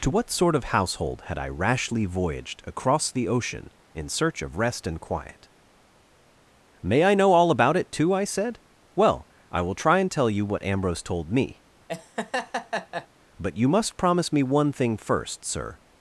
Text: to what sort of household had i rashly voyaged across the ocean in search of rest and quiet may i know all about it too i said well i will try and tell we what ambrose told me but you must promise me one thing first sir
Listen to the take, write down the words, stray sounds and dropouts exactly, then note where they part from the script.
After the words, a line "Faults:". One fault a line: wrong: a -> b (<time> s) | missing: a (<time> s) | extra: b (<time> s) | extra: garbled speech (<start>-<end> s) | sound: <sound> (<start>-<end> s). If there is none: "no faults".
to what sort of household had i rashly voyaged across the ocean in search of rest and quiet may i know all about it too i said well i will try and tell you what ambrose told me but you must promise me one thing first sir
Faults:
wrong: we -> you (10.3 s)
sound: laugh (11.9-13.1 s)